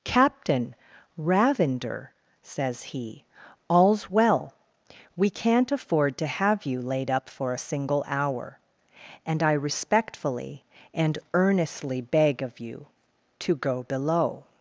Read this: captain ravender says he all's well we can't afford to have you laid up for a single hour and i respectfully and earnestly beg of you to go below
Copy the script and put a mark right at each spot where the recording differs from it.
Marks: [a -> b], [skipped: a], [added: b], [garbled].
captain ravender says he all's well we can't afford to have you laid up for a single hour and i respectfully and earnestly beg of you to go below